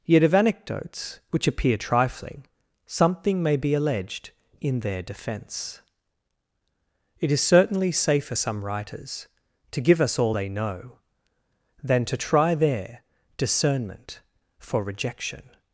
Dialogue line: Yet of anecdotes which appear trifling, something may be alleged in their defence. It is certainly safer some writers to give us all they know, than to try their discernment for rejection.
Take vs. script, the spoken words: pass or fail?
pass